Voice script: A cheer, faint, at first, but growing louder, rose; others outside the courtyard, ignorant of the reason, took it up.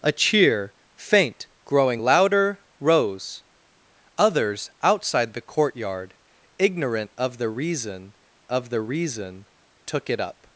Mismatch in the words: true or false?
true